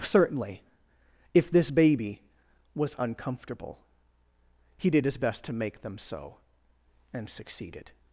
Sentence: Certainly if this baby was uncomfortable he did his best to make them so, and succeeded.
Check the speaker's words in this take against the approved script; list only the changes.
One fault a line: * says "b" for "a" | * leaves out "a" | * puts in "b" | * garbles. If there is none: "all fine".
all fine